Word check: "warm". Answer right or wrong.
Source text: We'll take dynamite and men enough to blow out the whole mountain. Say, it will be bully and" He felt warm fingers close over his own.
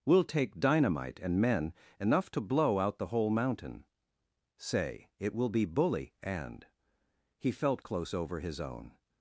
wrong